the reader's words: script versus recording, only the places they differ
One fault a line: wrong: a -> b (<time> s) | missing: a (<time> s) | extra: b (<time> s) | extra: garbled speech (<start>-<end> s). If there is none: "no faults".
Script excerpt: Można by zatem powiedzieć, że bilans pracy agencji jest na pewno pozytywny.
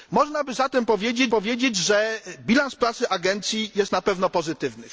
extra: powiedzieć (1.3 s)